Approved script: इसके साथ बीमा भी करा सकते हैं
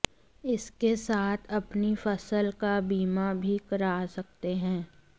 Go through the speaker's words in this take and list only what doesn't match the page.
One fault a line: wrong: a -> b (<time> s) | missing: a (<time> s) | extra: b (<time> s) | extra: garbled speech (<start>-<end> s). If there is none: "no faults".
extra: अपनी फसल का (1.5 s)